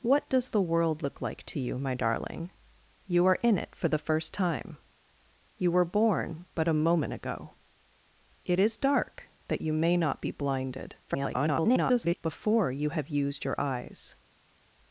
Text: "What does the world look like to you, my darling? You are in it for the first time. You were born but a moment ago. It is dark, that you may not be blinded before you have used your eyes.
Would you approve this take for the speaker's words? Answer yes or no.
no